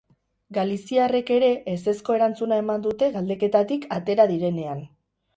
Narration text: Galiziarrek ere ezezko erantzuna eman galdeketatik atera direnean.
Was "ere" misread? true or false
false